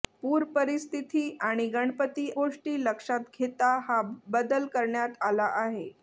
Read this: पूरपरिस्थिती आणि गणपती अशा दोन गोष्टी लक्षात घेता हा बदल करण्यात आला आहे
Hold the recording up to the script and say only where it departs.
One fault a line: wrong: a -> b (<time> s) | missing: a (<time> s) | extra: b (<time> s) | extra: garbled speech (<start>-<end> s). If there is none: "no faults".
missing: अशा दोन (2.3 s)